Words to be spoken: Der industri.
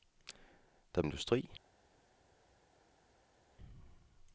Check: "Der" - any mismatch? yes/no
no